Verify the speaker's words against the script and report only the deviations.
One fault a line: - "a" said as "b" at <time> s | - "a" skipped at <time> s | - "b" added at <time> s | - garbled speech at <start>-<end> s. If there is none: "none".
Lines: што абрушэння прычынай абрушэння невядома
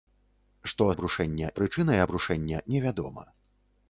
none